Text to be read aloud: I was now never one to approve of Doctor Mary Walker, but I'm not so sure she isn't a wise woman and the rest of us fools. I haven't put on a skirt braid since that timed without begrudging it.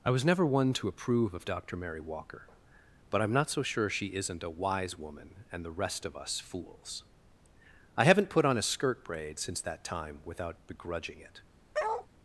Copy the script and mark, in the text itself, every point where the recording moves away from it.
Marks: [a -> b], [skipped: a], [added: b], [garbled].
I was [skipped: now] never one to approve of Doctor Mary Walker, but I'm not so sure she isn't a wise woman and the rest of us fools. I haven't put on a skirt braid since that [timed -> time] without begrudging it.